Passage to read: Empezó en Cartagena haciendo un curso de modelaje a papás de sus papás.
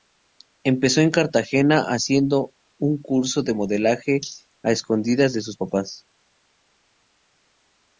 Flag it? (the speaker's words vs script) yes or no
yes